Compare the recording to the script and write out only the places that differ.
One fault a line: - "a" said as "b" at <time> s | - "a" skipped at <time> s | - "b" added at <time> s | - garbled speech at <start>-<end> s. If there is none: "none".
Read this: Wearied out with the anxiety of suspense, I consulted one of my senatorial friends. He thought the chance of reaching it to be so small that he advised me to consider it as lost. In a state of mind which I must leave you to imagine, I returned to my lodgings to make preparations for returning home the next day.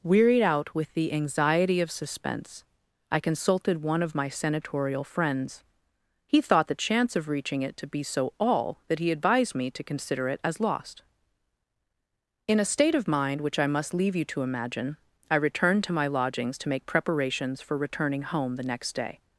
- "small" said as "all" at 8.4 s